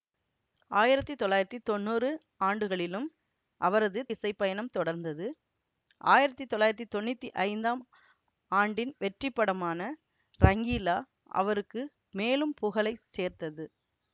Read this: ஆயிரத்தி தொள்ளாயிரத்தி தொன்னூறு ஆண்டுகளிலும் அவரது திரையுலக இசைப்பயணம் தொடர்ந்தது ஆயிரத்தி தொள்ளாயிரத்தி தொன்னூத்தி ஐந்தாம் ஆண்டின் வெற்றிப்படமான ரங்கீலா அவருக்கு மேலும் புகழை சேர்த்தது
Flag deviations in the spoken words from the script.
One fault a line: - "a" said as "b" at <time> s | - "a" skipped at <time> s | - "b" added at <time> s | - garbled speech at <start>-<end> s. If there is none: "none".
- "திரையுலக" skipped at 4.0 s